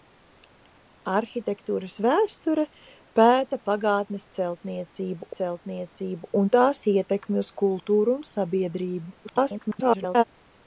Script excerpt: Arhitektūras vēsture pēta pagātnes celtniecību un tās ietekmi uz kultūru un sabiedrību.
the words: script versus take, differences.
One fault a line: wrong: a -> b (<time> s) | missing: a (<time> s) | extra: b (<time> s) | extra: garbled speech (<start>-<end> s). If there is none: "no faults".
extra: celtniecību (5.4 s)
extra: garbled speech (9.2-10.2 s)